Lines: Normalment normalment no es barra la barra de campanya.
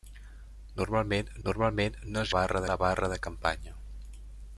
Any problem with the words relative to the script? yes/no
no